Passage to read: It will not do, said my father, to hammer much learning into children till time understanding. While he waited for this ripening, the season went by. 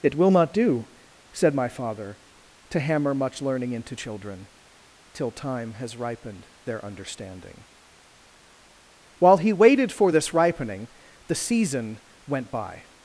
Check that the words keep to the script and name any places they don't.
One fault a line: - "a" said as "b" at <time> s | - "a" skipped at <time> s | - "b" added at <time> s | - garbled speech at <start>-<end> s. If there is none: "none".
- "has ripened their" added at 5.7 s